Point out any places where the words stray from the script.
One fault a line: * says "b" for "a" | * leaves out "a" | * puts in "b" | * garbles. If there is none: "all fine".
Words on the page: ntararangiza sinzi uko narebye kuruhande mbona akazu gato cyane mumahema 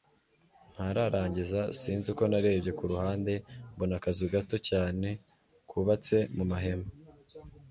* puts in "kubatse"